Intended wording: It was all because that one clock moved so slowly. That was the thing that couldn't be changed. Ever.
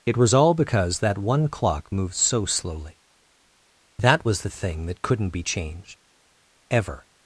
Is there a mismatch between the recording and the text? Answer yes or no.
no